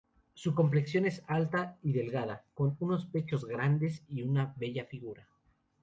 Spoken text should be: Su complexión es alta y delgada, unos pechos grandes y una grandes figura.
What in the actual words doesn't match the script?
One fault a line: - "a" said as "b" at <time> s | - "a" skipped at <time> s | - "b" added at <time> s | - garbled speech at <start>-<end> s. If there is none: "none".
- "con" added at 2.5 s
- "grandes" said as "bella" at 4.6 s